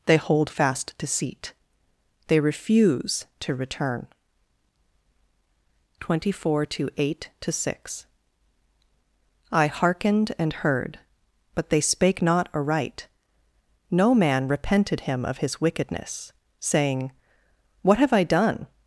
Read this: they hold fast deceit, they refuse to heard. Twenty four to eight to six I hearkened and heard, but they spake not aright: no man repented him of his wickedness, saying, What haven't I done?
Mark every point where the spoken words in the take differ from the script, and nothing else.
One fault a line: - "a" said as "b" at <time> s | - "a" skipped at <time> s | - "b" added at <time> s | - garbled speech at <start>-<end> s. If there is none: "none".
- "heard" said as "return" at 3.5 s
- "haven't" said as "have" at 18.0 s